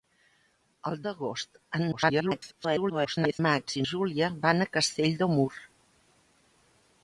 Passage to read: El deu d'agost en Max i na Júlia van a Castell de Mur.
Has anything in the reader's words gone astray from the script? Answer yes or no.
yes